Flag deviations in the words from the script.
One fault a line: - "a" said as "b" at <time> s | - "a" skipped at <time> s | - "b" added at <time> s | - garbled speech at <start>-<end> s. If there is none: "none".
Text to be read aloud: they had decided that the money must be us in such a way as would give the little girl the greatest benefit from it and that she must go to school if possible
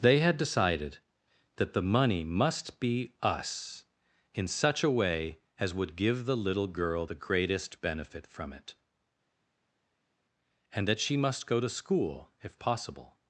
none